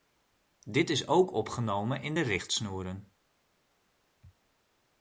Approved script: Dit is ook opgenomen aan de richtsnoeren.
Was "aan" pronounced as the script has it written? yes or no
no